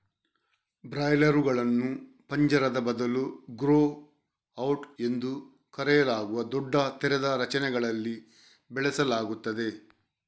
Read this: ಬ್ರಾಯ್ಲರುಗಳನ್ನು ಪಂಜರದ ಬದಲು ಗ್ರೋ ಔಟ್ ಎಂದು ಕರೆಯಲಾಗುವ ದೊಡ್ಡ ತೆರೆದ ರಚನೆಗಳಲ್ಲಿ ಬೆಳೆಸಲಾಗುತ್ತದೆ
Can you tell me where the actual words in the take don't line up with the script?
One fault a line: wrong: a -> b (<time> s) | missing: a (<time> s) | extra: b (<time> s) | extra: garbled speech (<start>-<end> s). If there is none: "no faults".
no faults